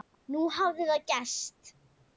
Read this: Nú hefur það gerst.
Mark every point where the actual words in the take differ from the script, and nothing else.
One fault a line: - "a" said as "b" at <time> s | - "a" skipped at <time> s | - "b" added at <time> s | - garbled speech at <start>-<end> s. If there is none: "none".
- "hefur" said as "hafði" at 0.6 s